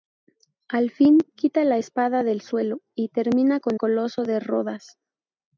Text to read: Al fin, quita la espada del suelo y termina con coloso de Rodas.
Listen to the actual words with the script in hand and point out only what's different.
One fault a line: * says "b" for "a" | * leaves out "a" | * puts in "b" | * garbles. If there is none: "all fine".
all fine